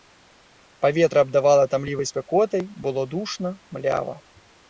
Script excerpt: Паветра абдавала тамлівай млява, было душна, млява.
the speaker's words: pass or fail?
fail